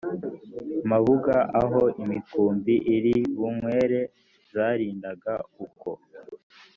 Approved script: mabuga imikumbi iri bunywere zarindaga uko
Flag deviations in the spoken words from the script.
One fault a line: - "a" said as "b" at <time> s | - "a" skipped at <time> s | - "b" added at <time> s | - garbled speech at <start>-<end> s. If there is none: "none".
- "aho" added at 1.6 s